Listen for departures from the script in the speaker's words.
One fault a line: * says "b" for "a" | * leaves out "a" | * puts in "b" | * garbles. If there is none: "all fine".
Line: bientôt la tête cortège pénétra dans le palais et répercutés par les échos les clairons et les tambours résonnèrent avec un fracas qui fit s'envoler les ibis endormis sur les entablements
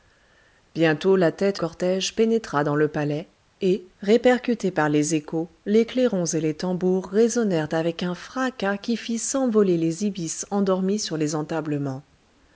all fine